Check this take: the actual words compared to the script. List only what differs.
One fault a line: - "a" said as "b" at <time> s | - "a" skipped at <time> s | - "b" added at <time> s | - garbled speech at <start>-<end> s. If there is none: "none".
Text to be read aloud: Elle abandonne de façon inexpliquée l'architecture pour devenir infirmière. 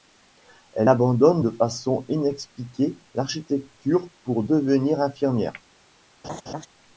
none